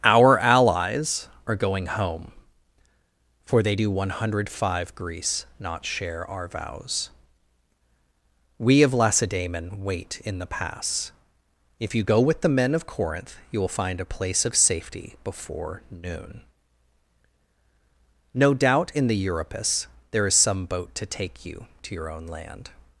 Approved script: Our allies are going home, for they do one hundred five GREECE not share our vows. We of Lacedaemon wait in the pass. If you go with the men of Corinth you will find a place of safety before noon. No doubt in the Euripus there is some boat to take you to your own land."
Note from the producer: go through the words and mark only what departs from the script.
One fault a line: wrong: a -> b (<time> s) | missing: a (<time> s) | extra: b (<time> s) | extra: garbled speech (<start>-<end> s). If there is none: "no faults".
no faults